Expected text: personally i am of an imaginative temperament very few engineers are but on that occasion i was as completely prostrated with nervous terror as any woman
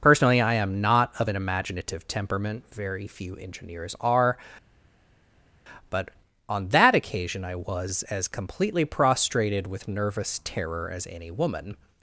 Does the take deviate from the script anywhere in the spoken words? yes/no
yes